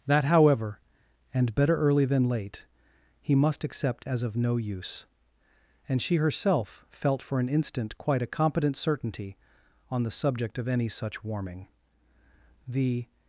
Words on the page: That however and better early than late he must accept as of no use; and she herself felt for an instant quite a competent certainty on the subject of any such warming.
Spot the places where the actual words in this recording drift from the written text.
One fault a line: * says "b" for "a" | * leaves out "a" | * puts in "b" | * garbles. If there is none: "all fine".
* puts in "The"